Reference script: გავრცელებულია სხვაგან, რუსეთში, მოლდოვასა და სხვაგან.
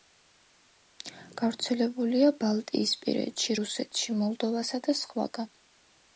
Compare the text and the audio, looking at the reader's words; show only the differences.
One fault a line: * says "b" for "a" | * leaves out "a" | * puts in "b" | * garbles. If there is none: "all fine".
* says "ბალტიისპირეთში" for "სხვაგან"